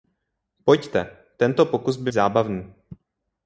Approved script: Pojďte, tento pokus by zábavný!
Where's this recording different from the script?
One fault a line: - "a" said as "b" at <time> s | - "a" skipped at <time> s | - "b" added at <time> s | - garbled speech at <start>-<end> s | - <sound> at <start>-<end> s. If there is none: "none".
none